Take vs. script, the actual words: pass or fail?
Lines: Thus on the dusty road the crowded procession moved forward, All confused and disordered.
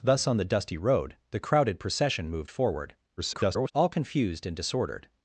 fail